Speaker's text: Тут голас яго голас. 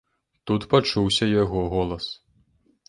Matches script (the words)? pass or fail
fail